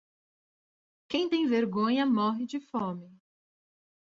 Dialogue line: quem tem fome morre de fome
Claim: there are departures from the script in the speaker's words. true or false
true